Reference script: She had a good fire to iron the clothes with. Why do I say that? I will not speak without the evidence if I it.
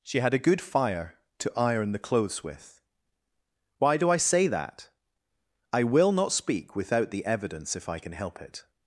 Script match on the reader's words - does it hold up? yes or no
no